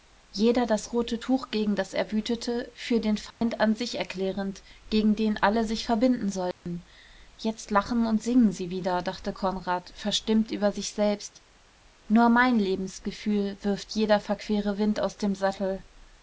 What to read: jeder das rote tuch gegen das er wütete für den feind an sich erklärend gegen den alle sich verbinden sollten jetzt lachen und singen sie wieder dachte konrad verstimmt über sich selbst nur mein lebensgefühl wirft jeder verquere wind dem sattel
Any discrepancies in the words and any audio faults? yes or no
yes